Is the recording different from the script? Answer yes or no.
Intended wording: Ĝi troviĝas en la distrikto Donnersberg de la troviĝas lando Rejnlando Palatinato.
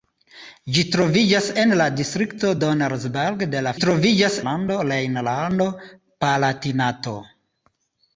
no